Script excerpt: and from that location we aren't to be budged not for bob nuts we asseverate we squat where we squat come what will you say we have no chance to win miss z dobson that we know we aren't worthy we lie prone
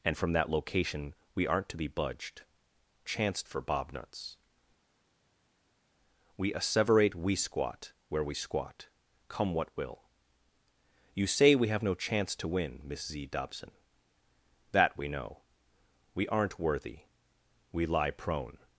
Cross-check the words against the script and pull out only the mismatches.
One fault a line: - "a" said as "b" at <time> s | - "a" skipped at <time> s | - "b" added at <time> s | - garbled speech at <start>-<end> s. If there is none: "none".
- "not" said as "chance" at 3.0 s